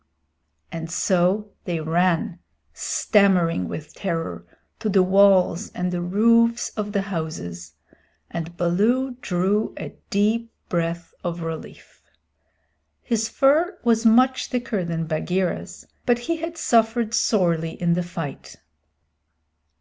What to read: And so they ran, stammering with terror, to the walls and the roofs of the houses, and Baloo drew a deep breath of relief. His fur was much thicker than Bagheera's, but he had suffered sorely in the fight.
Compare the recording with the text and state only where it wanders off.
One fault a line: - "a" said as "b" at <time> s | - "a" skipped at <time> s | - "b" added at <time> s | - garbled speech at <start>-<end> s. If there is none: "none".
none